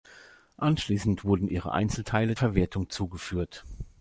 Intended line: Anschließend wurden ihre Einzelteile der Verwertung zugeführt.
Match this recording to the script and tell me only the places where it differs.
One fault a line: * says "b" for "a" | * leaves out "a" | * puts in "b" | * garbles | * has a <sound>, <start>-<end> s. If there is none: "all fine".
* leaves out "der"